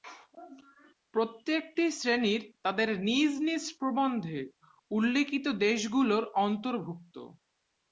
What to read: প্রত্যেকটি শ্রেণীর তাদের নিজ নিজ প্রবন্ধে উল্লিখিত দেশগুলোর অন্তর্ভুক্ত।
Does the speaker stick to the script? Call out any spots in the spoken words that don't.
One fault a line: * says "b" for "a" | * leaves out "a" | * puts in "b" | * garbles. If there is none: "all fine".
all fine